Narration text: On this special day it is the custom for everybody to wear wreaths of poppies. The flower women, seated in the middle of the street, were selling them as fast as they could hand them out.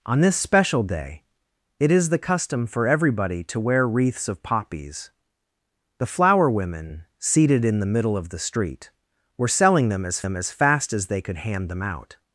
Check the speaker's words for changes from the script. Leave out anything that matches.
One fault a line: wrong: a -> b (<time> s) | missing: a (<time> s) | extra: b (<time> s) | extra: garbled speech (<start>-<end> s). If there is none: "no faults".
extra: them as (10.2 s)